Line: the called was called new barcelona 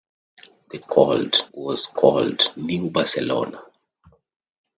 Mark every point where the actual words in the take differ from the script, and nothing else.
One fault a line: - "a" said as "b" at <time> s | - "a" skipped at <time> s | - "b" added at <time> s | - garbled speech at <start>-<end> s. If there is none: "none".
none